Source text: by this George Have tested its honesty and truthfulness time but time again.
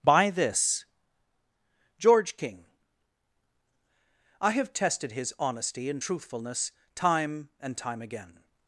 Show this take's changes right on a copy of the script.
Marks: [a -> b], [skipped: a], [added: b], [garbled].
by this George [added: King I] Have tested [its -> his] honesty and truthfulness time [but -> and] time again.